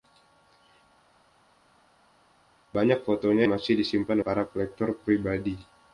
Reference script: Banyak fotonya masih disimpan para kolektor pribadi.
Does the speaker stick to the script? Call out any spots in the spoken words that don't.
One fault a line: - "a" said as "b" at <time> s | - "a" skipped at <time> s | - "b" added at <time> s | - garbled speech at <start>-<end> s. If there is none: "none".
none